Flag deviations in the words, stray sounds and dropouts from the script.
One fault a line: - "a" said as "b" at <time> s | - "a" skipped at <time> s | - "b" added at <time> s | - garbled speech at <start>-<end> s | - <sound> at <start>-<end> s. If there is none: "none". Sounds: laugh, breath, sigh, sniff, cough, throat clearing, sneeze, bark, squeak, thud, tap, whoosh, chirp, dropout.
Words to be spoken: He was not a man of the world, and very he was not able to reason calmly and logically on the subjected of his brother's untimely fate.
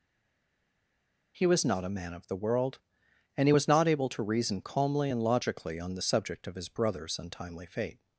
- "very" skipped at 3.5 s
- "subjected" said as "subject" at 6.0 s